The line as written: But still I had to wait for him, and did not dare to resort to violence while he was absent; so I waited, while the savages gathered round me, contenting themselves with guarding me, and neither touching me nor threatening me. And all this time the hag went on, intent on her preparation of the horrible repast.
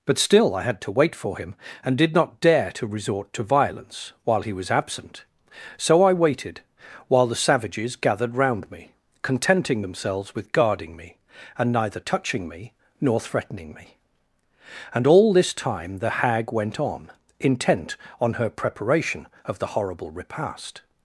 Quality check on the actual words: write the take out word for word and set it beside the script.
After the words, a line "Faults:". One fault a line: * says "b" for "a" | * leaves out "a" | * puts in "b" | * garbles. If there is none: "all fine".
But still I had to wait for him, and did not dare to resort to violence while he was absent; so I waited, while the savages gathered round me, contenting themselves with guarding me, and neither touching me nor threatening me. And all this time the hag went on, intent on her preparation of the horrible repast.
Faults:
all fine